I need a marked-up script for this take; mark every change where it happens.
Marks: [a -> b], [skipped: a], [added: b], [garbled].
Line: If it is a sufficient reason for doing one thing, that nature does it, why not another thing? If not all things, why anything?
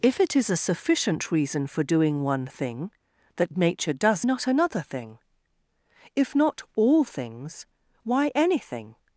If it is a sufficient reason for doing one thing, that nature does [skipped: it, why] not another thing? If not all things, why anything?